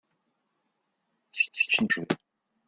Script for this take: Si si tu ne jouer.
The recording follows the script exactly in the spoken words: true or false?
true